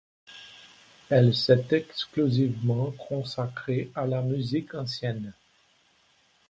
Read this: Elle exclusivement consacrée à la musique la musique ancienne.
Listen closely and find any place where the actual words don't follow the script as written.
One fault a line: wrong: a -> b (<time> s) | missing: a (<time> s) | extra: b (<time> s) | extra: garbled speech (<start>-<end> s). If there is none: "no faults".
extra: s'est (1.4 s)
missing: la musique (4.7 s)